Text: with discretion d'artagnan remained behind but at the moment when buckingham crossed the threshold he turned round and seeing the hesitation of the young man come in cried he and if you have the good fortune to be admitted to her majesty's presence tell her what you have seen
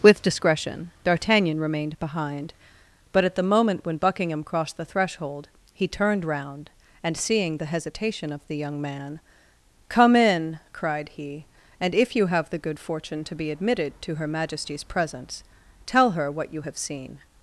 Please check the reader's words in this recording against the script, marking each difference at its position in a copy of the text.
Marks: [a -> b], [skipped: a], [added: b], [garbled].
with discretion d'artagnan remained behind but at the moment when buckingham crossed the threshold he turned round and seeing the hesitation of the young man come in cried he and if you have the good fortune to be admitted to her majesty's presence tell her what you have seen